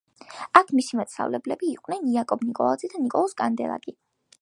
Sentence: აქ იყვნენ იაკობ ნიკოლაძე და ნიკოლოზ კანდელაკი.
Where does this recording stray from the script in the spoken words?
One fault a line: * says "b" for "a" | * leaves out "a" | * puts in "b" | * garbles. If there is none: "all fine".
* puts in "მისი მასწავლებლები"